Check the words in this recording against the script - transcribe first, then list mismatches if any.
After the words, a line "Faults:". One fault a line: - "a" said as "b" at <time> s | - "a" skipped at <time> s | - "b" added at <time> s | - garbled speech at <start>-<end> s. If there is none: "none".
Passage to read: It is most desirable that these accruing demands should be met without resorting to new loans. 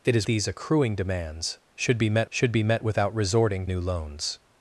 It is these accruing demands should be met should be met without resorting new loans.
Faults:
- "most desirable that" skipped at 0.3 s
- "should be met" added at 2.3 s
- "to" skipped at 3.7 s